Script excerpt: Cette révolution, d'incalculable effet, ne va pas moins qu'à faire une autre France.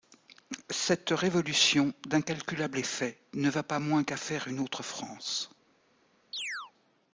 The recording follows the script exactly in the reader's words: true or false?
true